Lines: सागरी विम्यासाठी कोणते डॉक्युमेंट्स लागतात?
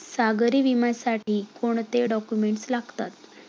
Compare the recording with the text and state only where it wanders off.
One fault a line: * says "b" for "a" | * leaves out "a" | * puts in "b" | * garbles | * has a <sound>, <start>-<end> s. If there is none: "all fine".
* has a dropout, 1.2-1.3 s